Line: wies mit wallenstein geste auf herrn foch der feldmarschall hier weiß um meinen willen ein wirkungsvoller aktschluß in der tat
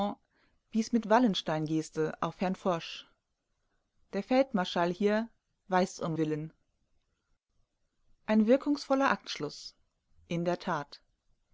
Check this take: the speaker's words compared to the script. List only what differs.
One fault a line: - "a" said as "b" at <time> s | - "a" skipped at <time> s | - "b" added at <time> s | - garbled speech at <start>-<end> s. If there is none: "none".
- "meinen" skipped at 6.1 s